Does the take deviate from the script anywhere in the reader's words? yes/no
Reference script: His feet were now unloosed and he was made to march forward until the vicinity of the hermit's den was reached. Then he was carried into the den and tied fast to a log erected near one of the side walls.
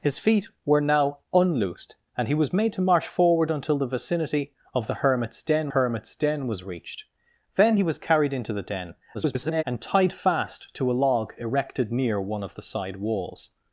yes